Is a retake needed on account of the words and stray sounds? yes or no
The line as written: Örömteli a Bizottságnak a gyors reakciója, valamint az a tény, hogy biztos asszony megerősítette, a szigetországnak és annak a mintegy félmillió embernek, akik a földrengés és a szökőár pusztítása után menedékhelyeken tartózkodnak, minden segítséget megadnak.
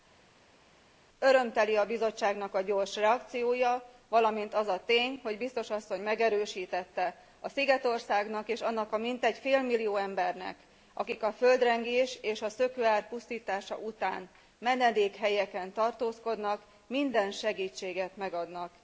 no